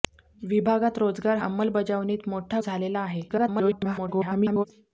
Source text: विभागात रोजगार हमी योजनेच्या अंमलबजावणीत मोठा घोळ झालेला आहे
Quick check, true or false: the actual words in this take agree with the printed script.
false